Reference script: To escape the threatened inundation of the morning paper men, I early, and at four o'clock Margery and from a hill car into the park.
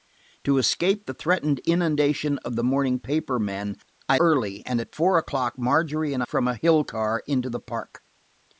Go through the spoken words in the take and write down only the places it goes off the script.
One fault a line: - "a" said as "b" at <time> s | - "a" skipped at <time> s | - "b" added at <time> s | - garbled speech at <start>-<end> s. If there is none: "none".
none